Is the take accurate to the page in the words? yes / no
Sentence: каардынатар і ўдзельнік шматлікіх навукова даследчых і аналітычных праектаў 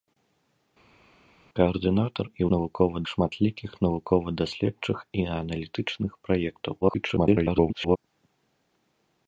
no